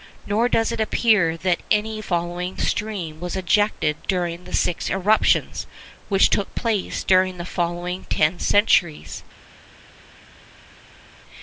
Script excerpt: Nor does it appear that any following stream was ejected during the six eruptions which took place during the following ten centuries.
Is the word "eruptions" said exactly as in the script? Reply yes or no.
yes